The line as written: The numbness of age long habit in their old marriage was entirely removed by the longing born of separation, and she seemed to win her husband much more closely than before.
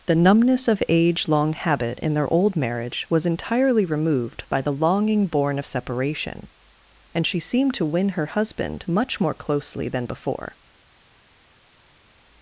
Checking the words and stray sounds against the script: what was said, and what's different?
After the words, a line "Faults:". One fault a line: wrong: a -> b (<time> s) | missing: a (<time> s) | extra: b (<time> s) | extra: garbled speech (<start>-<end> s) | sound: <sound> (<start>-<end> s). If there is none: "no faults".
The numbness of age long habit in their old marriage was entirely removed by the longing born of separation, and she seemed to win her husband much more closely than before.
Faults:
no faults